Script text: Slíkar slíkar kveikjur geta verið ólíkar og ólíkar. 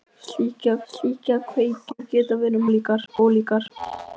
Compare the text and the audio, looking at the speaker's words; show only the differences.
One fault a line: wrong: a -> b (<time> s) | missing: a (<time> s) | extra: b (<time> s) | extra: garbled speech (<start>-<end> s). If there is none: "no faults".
no faults